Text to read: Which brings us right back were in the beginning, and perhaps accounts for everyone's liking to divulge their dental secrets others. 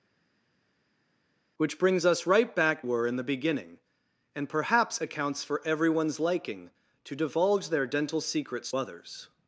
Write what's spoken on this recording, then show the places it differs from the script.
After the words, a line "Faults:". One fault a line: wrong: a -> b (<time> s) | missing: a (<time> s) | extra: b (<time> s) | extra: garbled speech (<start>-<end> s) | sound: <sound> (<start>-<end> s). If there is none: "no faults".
Which brings us right back were in the beginning, and perhaps accounts for everyone's liking to divulge their dental secrets others.
Faults:
no faults